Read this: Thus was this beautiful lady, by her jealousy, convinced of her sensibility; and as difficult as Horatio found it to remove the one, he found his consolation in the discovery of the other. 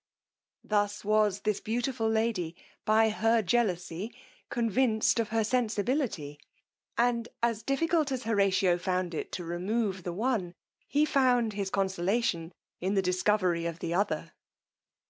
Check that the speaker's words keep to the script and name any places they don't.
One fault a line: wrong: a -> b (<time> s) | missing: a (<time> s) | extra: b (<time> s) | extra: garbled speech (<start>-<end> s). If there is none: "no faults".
no faults